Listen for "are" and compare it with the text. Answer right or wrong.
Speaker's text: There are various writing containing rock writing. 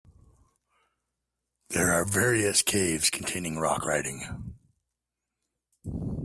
right